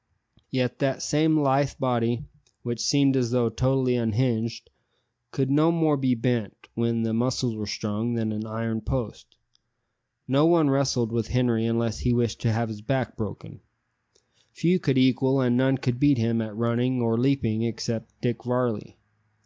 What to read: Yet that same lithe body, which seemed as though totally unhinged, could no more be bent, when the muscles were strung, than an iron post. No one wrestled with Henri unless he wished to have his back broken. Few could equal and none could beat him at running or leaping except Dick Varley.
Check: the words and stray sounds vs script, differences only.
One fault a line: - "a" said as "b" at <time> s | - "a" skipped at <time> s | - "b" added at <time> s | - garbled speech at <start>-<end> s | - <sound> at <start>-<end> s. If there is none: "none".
none